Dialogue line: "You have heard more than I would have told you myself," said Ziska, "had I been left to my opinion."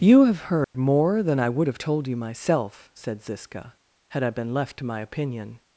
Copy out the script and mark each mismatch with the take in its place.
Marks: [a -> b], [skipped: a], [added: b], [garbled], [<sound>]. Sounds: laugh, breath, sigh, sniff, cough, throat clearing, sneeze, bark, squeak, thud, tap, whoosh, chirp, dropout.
"You have heard [dropout] more than I would have told you myself," said Ziska, "had I been left to my opinion."